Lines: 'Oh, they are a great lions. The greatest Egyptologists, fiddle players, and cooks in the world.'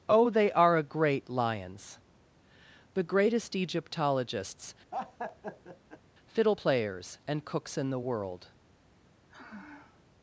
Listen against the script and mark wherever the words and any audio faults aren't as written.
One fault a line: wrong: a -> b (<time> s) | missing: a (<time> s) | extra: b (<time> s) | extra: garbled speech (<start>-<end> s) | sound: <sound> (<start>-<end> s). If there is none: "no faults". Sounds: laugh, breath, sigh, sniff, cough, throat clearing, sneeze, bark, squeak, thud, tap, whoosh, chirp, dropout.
sound: laugh (4.9-6.0 s)
sound: sigh (9.3-10.0 s)